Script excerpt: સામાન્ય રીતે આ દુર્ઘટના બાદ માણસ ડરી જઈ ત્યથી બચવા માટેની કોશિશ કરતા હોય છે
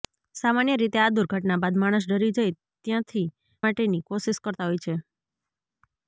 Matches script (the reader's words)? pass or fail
fail